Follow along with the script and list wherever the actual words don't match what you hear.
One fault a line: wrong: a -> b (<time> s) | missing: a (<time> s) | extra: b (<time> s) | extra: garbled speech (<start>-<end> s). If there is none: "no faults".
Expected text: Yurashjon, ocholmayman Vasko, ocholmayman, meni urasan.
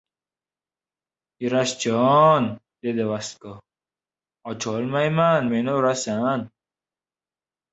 wrong: ocholmayman -> dedi (2.8 s)